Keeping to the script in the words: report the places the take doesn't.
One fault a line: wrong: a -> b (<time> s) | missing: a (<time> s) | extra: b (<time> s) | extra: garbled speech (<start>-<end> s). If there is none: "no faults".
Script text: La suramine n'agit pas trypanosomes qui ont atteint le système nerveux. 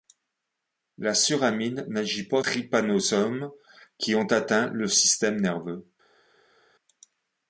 no faults